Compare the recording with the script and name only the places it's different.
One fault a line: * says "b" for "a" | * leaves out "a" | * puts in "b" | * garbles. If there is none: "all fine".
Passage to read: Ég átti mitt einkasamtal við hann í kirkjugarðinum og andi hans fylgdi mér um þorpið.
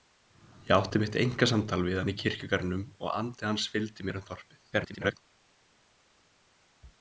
* garbles